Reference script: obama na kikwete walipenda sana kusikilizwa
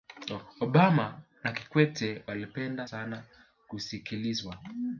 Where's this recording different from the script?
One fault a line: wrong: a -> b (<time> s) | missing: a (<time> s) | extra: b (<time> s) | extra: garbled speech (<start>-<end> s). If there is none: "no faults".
no faults